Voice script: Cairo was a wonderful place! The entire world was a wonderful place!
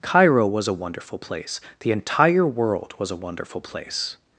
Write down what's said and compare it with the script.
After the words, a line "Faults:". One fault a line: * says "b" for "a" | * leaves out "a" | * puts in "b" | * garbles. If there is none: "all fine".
Cairo was a wonderful place! The entire world was a wonderful place!
Faults:
all fine